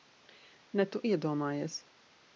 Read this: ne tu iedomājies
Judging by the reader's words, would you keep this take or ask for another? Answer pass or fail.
pass